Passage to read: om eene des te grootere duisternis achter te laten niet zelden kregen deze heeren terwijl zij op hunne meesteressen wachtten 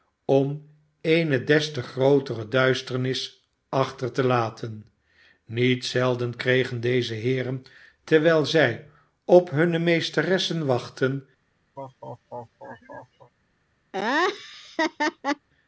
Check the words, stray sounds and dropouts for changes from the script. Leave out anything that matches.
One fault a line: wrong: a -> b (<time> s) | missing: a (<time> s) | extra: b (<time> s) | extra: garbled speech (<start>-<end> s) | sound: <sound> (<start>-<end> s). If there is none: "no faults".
sound: laugh (11.8-13.3 s)
sound: laugh (13.9-15.5 s)